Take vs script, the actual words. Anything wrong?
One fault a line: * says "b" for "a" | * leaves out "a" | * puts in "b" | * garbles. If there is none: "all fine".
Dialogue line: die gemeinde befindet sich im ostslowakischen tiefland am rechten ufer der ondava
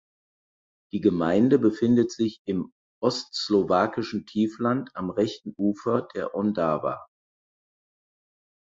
all fine